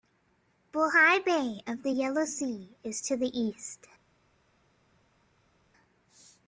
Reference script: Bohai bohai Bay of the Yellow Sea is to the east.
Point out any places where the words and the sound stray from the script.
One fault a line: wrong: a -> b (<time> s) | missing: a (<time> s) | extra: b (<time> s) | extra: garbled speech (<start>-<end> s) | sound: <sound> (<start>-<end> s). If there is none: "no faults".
missing: bohai (1.2 s)